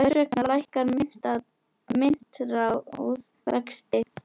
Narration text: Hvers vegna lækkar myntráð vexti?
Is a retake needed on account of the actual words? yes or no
no